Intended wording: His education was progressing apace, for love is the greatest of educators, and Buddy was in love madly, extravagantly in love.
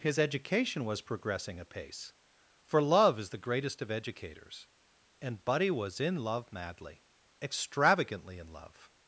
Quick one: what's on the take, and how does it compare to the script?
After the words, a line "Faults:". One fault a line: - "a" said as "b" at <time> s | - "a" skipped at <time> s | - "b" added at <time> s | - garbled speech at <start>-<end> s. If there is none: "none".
His education was progressing apace, for love is the greatest of educators, and Buddy was in love madly, extravagantly in love.
Faults:
none